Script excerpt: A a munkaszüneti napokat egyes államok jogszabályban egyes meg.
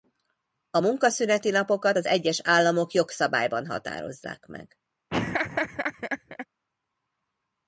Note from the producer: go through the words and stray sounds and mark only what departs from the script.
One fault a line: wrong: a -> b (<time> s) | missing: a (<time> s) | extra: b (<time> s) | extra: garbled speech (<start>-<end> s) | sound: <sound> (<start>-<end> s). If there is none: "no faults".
missing: a (0.8 s)
extra: az (2.0 s)
wrong: egyes -> határozzák (3.7 s)
sound: laugh (5.1-6.5 s)